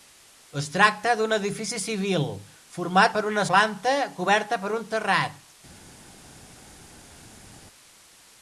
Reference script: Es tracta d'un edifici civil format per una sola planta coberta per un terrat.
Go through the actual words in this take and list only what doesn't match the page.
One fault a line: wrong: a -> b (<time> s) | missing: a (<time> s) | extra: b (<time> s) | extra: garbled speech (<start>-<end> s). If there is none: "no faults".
missing: sola (3.4 s)